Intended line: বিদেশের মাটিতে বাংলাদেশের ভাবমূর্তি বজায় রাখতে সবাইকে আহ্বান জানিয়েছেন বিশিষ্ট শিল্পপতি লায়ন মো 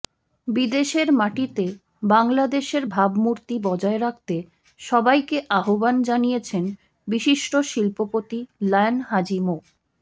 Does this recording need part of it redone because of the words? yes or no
yes